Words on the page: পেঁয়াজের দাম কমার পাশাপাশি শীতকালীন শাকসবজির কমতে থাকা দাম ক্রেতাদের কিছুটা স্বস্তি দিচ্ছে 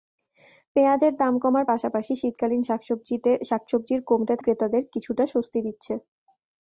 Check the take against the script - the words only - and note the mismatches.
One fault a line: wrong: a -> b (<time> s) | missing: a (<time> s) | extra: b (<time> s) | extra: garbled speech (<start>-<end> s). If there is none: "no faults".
missing: থাকা দাম (4.3 s)